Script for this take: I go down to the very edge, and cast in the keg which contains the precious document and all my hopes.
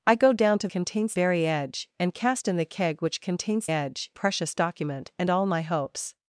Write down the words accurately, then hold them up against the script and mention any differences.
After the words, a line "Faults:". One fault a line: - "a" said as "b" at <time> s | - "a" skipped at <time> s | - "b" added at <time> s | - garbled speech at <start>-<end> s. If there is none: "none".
I go down to contains very edge, and cast in the keg which contains edge precious document and all my hopes.
Faults:
- "the" said as "contains" at 0.7 s
- "the" said as "edge" at 3.7 s